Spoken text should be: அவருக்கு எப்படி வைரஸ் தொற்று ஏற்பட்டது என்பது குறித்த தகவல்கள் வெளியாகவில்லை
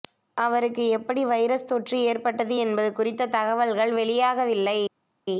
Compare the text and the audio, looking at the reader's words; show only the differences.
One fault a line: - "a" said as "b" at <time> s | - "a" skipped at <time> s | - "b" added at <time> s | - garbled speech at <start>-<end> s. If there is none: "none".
none